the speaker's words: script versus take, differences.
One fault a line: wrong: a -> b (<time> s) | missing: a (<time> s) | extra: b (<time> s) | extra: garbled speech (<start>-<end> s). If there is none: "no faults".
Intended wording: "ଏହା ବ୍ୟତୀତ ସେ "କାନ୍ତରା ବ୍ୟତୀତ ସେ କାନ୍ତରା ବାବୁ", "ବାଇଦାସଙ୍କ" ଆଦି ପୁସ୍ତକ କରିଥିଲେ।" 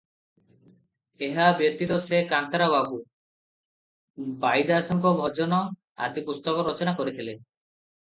missing: ବ୍ୟତୀତ ସେ କାନ୍ତରା (2.7 s)
extra: ଭଜନ (5.2 s)
extra: ରଚନା (6.7 s)